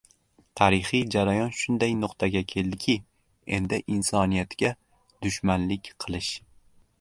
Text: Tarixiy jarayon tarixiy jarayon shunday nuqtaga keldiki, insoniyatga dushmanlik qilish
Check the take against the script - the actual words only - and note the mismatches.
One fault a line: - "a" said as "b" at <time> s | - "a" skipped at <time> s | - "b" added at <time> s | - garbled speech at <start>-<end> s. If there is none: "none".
- "tarixiy jarayon" skipped at 1.5 s
- "endi" added at 3.6 s